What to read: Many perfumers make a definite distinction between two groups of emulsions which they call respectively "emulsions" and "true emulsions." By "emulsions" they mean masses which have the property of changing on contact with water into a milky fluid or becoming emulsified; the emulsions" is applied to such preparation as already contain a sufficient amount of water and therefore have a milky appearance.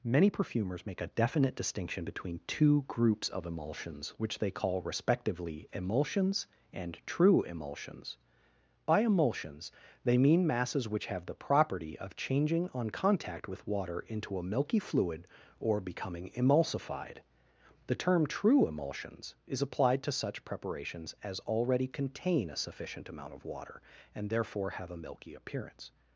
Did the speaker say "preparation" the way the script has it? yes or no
no